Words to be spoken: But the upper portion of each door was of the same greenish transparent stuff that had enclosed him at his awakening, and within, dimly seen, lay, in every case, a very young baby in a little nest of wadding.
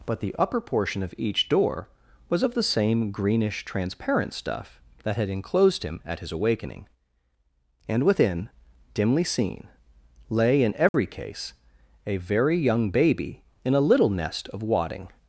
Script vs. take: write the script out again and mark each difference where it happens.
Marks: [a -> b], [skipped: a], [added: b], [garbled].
But the upper portion of each door was of the same greenish transparent stuff that had enclosed him at his awakening, and within, dimly seen, lay, in every case, a very young baby in a little nest of wadding.